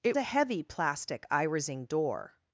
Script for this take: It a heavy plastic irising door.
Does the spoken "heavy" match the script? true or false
true